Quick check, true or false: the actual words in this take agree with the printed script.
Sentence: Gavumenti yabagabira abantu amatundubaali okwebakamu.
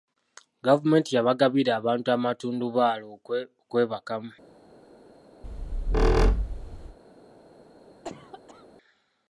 true